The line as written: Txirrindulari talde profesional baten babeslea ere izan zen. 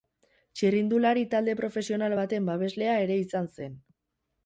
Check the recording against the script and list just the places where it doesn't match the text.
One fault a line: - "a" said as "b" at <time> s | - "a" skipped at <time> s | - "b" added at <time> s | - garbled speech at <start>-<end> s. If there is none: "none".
none